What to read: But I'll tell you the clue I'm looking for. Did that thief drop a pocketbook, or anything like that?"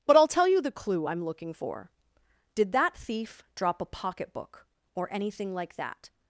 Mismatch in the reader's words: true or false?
false